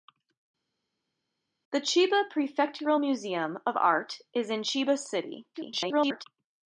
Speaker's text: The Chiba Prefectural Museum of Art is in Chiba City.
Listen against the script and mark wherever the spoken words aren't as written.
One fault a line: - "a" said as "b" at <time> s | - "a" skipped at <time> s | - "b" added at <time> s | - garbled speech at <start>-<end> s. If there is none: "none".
- garbled speech at 5.5-6.2 s